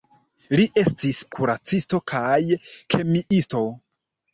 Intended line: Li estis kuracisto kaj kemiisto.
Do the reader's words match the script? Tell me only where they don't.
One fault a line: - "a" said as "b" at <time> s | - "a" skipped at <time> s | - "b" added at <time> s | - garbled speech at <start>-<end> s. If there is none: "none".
none